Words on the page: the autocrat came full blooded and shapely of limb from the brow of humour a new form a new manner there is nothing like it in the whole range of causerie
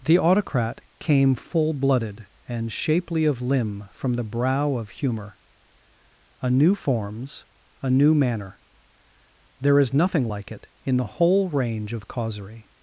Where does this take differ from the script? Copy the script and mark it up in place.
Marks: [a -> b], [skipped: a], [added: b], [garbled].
the autocrat came full blooded and shapely of limb from the brow of humour a new [form -> forms] a new manner there is nothing like it in the whole range of causerie